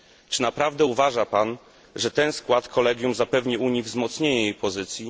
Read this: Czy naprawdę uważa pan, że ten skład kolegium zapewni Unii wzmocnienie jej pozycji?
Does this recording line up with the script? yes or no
yes